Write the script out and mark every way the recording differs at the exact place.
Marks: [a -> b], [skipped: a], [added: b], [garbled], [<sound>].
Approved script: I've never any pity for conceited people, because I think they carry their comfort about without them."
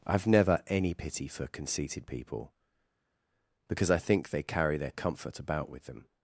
I've never any pity for conceited people, because I think they carry their comfort about [without -> with] them."